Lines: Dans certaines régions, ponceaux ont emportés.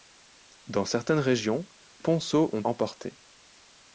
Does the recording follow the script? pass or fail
pass